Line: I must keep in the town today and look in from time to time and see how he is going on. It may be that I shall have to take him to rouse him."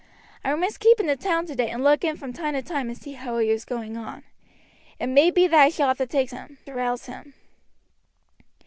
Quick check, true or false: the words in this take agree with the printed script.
true